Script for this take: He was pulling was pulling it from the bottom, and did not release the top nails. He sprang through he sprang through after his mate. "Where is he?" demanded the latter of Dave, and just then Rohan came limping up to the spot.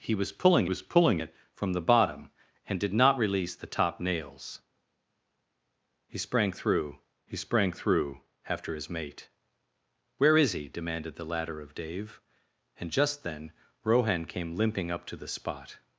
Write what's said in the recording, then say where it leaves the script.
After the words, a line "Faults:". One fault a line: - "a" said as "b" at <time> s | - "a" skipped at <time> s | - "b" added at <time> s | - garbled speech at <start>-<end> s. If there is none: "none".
He was pulling was pulling it from the bottom, and did not release the top nails. He sprang through he sprang through after his mate. "Where is he?" demanded the latter of Dave, and just then Rohan came limping up to the spot.
Faults:
none